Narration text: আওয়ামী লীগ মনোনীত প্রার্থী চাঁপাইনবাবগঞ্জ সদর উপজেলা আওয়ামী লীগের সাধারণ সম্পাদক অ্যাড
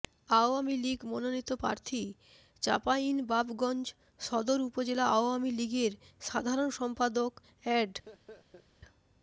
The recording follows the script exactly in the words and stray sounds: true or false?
false